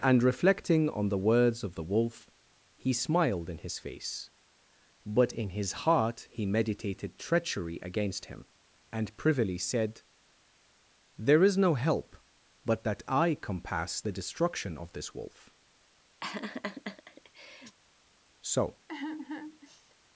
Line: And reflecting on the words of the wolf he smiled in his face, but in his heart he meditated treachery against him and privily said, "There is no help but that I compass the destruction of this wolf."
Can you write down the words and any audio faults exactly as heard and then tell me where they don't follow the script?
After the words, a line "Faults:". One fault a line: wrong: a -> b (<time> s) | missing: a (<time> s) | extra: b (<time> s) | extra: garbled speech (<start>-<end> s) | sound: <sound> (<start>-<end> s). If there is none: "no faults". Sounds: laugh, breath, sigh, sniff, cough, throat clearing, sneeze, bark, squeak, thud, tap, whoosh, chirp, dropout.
And reflecting on the words of the wolf he smiled in his face, but in his heart he meditated treachery against him and privily said, "There is no help but that I compass the destruction of this wolf." So
Faults:
sound: laugh (16.2-17.8 s)
extra: So (18.4 s)
sound: sigh (18.9-20.0 s)